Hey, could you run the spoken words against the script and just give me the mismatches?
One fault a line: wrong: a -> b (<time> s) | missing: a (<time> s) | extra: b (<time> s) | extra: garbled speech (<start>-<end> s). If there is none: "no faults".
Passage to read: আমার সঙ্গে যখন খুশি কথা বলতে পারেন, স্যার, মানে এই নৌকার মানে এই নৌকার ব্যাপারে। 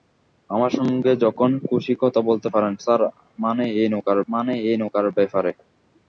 no faults